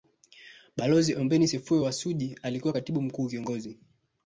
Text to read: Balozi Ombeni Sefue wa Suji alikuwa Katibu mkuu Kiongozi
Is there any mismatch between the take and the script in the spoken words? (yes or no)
no